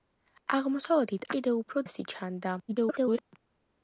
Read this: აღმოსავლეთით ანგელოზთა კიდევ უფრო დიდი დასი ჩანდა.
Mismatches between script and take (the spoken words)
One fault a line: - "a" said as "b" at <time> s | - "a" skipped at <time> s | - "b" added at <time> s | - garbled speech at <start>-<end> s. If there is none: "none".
- "ანგელოზთა" skipped at 1.3 s
- "დიდი" skipped at 1.9 s
- garbled speech at 2.7-3.2 s